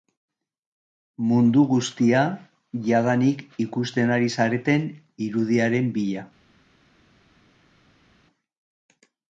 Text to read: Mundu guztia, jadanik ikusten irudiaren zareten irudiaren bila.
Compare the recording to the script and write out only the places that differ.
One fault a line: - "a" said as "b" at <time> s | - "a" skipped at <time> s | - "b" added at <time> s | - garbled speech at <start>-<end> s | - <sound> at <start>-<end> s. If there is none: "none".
- "irudiaren" said as "ari" at 4.2 s